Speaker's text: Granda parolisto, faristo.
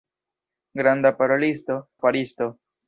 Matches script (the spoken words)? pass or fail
pass